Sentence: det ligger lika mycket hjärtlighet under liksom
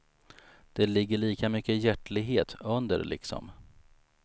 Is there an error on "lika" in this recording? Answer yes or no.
no